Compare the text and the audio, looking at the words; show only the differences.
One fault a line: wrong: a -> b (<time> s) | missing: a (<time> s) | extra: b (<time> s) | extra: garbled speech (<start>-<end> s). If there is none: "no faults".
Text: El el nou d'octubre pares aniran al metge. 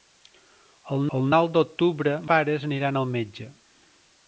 no faults